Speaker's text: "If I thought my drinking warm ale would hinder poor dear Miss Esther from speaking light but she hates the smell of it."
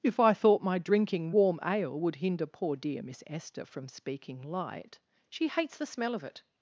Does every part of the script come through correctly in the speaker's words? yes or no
no